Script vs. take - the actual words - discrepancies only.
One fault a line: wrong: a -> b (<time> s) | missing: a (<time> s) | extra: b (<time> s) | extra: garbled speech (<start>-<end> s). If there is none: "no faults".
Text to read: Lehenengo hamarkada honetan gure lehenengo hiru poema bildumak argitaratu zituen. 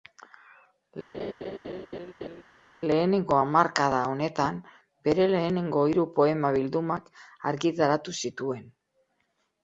wrong: gure -> bere (5.1 s)